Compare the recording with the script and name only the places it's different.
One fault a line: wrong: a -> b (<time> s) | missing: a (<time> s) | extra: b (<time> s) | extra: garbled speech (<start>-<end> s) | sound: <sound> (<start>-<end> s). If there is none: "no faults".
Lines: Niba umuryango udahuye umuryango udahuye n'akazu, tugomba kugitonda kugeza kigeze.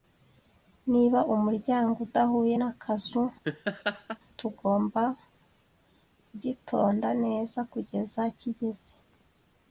missing: umuryango udahuye (2.5 s)
sound: laugh (3.4-4.2 s)
extra: neza (7.2 s)